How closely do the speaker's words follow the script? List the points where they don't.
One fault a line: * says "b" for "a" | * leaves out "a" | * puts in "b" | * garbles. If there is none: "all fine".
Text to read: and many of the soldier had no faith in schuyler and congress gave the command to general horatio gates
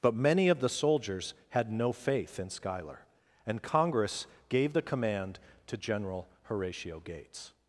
* says "but" for "and"
* says "soldiers" for "soldier"